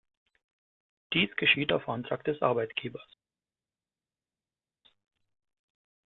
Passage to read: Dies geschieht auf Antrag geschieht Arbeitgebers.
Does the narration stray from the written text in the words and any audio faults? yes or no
yes